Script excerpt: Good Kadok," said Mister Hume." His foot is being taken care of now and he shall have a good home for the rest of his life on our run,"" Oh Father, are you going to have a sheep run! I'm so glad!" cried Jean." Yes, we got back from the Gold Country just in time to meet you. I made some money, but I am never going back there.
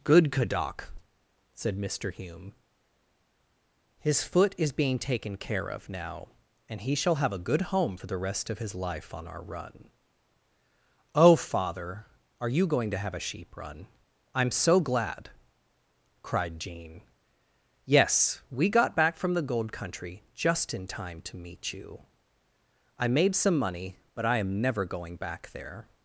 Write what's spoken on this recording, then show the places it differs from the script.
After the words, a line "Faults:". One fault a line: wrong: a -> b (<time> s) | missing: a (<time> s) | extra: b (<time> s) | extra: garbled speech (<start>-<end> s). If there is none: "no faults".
Good Kadok," said Mister Hume." His foot is being taken care of now and he shall have a good home for the rest of his life on our run,"" Oh Father, are you going to have a sheep run! I'm so glad!" cried Jean." Yes, we got back from the Gold Country just in time to meet you. I made some money, but I am never going back there.
Faults:
no faults